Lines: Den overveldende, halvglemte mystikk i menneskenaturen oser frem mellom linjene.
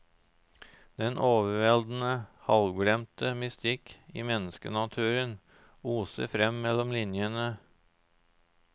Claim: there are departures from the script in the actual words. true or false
false